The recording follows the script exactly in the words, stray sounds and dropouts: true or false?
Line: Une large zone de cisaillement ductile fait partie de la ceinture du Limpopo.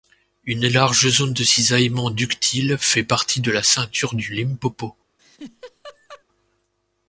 false